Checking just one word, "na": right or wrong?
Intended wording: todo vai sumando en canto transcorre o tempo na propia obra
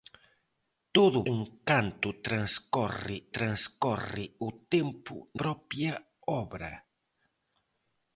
wrong